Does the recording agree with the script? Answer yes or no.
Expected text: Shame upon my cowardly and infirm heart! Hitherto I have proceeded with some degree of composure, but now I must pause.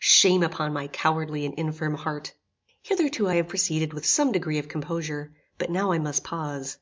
yes